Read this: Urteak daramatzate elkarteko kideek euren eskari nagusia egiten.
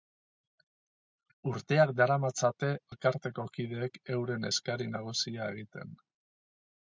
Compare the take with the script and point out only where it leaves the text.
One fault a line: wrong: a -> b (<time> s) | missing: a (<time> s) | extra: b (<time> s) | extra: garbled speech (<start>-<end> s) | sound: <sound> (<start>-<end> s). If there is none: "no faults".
no faults